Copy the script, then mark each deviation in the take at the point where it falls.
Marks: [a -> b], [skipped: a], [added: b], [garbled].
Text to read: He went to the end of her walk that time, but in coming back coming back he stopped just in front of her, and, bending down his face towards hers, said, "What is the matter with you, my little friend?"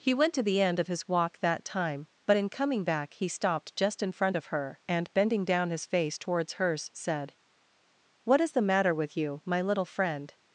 He went to the end of [her -> his] walk that time, but in coming back [skipped: coming back] he stopped just in front of her, and, bending down his face towards hers, said, "What is the matter with you, my little friend?"